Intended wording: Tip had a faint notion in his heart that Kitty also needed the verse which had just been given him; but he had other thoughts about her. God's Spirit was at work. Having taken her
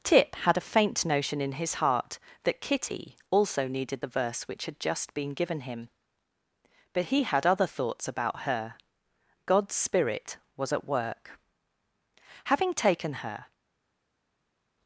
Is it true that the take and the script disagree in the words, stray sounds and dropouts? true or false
false